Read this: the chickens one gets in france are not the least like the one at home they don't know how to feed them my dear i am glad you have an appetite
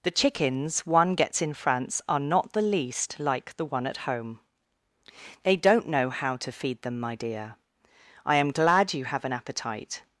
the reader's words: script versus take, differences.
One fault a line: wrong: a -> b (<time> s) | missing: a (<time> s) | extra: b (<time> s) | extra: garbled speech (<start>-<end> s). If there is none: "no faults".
no faults